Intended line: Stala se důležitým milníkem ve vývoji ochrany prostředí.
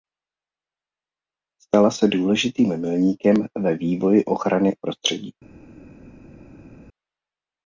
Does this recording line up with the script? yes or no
yes